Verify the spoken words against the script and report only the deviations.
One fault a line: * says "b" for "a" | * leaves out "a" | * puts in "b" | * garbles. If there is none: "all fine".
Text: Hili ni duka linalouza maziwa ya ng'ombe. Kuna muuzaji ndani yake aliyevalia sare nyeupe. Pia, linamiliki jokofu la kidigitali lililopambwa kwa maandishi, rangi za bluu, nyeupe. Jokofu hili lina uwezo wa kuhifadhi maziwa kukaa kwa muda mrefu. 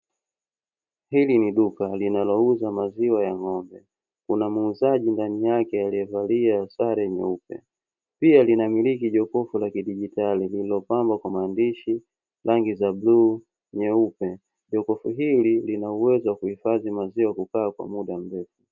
all fine